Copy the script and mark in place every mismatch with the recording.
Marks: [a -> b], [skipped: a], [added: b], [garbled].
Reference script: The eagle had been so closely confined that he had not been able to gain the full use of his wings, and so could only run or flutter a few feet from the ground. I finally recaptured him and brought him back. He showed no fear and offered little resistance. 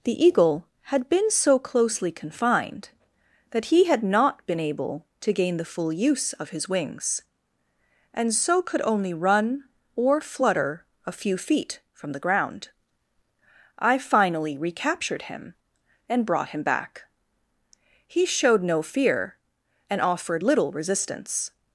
The eagle had been so closely confined that he had not been able to gain the full use of his wings, and so could only run or flutter a few feet from the ground. I finally recaptured him and brought him back. He showed no fear and offered little resistance.